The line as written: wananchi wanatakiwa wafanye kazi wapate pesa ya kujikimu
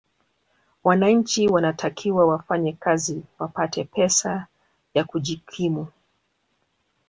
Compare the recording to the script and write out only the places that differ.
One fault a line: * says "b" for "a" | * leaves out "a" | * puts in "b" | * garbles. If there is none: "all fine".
all fine